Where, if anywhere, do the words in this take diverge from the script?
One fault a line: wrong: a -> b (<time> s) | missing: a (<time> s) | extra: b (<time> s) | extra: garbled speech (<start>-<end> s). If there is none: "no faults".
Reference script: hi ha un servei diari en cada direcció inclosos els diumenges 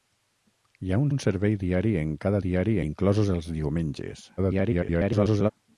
extra: un (1.1 s)
wrong: direcció -> diari (2.5 s)
extra: garbled speech (4.4-5.5 s)